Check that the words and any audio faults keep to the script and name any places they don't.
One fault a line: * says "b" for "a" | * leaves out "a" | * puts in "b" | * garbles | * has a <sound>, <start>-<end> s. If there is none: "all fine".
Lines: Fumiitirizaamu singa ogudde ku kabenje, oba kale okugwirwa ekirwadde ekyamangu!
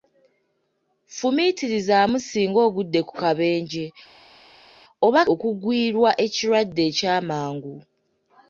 * leaves out "kale"